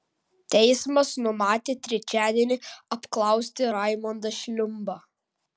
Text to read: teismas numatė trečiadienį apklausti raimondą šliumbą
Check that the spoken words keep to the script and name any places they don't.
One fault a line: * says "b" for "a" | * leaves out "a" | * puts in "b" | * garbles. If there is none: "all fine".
all fine